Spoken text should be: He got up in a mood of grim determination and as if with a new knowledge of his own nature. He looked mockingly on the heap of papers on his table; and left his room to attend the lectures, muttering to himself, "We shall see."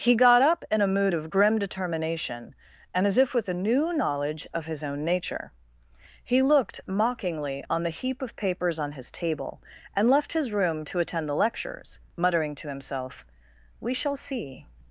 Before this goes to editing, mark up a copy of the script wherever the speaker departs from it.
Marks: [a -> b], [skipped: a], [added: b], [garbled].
He got up in a mood of grim determination and as if with a new knowledge of his own nature. He looked mockingly on the heap of papers on his table; and left his room to attend the lectures, muttering to himself, "We shall see."